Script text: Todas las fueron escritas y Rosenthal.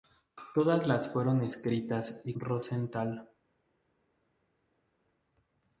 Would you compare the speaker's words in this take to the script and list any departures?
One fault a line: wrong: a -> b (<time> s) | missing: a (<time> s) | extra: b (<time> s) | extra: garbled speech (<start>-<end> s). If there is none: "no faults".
no faults